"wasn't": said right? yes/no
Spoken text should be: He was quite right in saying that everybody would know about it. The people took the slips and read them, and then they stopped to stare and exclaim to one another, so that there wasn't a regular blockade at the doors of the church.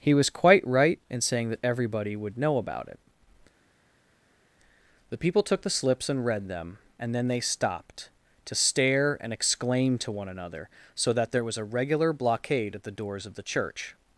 no